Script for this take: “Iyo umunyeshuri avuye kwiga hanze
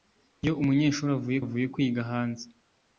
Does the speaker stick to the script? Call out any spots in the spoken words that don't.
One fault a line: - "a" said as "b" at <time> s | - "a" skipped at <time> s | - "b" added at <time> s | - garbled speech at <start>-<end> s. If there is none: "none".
- "avuye" added at 1.4 s